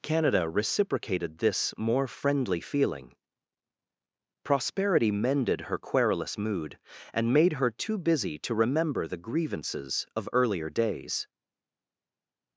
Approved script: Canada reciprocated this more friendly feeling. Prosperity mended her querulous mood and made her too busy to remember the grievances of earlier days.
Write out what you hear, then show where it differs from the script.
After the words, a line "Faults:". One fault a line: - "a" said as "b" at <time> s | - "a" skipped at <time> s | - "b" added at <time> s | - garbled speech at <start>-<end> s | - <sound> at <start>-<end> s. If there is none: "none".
Canada reciprocated this more friendly feeling. Prosperity mended her querulous mood and made her too busy to remember the grievances of earlier days.
Faults:
none